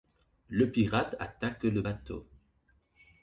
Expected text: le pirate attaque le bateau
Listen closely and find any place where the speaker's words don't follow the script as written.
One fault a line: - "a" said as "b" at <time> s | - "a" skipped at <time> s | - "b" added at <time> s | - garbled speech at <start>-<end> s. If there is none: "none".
none